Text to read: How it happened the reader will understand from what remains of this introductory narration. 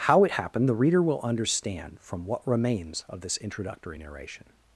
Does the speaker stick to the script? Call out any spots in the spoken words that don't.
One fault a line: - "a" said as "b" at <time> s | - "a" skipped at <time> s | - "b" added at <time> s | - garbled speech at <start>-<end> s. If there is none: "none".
none